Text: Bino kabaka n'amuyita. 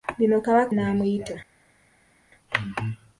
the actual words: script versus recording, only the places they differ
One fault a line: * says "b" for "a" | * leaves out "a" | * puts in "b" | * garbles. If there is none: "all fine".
all fine